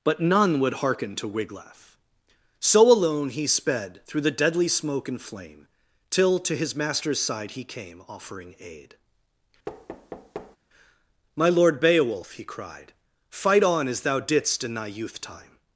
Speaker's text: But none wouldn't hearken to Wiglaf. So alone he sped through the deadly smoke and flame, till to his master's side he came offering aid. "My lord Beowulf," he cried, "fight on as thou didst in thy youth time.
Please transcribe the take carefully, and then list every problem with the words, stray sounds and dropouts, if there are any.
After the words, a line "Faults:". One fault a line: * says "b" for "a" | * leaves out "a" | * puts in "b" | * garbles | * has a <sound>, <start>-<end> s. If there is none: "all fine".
But none would hearken to Wiglaf. So alone he sped through the deadly smoke and flame, till to his master's side he came offering aid. "My lord Beowulf," he cried, "fight on as thou didst in thy youth time.
Faults:
* says "would" for "wouldn't"
* has a thud, 9.7-10.6 s